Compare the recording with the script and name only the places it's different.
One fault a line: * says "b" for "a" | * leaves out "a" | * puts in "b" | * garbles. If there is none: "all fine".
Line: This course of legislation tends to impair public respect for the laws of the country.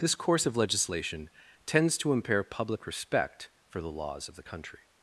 all fine